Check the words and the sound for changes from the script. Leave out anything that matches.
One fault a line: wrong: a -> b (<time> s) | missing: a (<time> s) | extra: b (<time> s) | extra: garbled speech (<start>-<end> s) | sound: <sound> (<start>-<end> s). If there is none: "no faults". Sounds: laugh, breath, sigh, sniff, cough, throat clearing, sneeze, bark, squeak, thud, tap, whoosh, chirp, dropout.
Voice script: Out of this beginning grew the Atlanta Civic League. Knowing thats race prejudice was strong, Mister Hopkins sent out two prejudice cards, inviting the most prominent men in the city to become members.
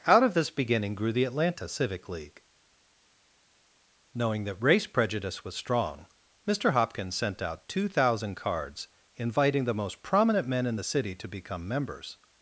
wrong: thats -> that (4.4 s)
wrong: prejudice -> thousand (7.9 s)